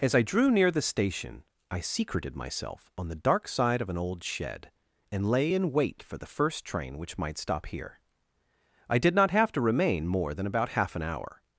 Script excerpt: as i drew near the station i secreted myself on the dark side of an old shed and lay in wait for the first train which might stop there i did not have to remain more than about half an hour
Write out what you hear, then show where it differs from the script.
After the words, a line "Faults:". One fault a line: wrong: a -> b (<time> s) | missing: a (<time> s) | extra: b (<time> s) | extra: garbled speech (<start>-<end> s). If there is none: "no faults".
as i drew near the station i secreted myself on the dark side of an old shed and lay in wait for the first train which might stop here i did not have to remain more than about half an hour
Faults:
wrong: there -> here (7.7 s)